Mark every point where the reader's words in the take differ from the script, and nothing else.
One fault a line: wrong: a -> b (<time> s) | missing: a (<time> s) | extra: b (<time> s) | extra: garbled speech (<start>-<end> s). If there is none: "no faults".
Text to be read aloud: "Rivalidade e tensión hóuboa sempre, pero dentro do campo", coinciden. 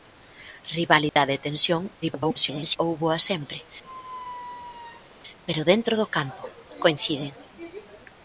extra: garbled speech (2.0-2.8 s)